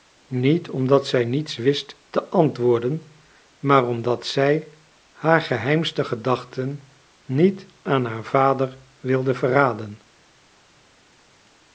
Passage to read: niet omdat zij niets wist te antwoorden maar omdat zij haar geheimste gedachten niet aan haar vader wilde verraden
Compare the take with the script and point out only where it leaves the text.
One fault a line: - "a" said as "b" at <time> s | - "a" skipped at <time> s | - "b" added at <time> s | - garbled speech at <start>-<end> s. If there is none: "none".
none